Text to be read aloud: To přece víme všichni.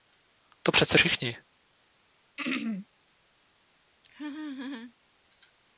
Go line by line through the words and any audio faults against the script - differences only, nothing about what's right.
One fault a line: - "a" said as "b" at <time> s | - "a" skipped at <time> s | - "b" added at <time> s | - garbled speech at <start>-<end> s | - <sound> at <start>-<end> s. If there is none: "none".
- "víme" skipped at 1.0 s
- throat clearing at 2.4-2.9 s
- laugh at 4.0-4.9 s